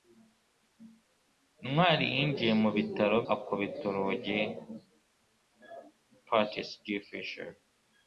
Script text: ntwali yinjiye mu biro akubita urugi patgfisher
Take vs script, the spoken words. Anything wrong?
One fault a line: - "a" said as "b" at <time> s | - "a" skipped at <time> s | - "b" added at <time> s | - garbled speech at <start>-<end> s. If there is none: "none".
none